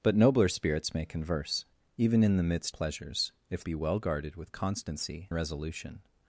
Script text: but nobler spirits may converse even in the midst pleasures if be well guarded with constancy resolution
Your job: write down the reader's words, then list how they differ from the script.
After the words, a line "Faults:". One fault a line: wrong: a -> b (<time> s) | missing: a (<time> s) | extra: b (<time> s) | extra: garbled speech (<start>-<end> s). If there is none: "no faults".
but nobler spirits may converse even in the midst pleasures if be well guarded with constancy resolution
Faults:
no faults